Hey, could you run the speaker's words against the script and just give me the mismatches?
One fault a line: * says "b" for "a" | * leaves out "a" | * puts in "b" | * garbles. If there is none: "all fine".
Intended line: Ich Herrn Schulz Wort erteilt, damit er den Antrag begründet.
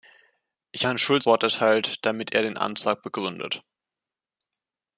all fine